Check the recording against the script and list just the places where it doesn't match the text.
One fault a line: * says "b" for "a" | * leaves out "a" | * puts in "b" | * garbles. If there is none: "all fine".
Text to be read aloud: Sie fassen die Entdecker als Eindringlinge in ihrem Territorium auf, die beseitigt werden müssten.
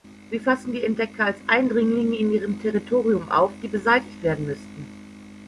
all fine